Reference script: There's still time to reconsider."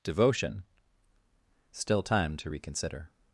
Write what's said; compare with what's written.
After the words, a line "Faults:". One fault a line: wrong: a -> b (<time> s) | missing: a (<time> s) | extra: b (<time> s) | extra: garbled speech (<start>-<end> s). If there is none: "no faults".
Devotion still time to reconsider."
Faults:
wrong: There's -> Devotion (0.0 s)